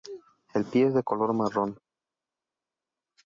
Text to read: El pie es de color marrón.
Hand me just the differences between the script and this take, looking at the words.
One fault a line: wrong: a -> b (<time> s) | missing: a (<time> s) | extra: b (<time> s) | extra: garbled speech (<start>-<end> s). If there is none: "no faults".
no faults